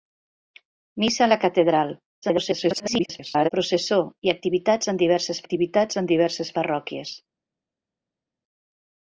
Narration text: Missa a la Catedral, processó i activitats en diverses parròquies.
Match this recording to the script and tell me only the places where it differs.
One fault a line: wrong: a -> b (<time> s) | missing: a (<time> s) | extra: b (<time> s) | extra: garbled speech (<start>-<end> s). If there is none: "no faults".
extra: garbled speech (2.2-3.5 s)
extra: activitats en diverses (5.4 s)